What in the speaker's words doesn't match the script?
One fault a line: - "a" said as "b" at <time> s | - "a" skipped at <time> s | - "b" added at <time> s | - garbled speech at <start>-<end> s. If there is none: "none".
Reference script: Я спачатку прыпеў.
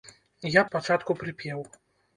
none